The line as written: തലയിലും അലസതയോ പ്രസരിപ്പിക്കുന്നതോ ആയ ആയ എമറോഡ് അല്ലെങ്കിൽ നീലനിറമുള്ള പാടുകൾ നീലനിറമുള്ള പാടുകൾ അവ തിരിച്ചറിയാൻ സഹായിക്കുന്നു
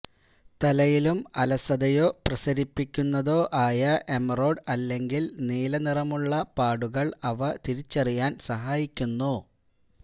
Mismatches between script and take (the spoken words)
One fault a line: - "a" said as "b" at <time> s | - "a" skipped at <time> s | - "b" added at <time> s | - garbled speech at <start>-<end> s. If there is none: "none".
- "ആയ" skipped at 3.8 s
- "നീലനിറമുള്ള പാടുകൾ" skipped at 7.1 s